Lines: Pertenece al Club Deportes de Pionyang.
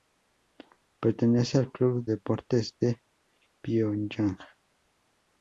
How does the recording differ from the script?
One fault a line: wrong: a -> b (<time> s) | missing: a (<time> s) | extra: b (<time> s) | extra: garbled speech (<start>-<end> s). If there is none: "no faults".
no faults